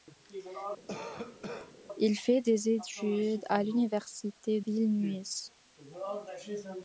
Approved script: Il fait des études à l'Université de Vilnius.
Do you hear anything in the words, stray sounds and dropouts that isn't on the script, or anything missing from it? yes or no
yes